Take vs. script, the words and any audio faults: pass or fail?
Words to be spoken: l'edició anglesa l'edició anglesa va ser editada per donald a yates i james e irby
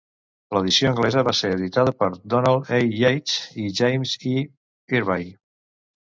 fail